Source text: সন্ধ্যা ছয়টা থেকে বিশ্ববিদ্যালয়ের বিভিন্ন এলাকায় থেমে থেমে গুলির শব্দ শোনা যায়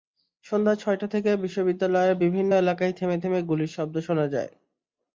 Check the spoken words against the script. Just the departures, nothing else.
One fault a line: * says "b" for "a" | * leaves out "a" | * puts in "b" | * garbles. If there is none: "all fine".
all fine